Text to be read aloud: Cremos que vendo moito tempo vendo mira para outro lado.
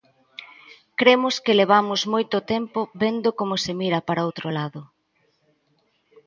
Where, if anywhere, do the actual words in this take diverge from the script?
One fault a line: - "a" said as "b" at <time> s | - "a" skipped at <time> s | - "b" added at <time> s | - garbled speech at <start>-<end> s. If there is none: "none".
- "vendo" said as "levamos" at 1.6 s
- "como se" added at 3.4 s